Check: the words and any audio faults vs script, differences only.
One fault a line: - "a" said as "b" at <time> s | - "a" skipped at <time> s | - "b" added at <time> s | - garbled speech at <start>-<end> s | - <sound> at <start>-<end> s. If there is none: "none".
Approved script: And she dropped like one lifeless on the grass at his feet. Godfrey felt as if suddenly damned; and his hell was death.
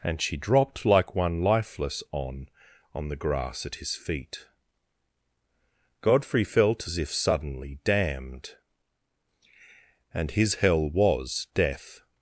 - "on" added at 2.9 s